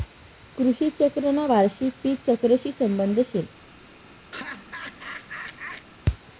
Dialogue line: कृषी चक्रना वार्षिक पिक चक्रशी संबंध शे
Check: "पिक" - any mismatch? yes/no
no